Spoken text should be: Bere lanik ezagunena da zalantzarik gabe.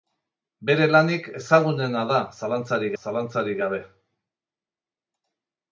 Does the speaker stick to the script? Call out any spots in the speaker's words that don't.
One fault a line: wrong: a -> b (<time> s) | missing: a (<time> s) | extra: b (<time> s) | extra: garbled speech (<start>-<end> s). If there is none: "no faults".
extra: zalantzarik (3.0 s)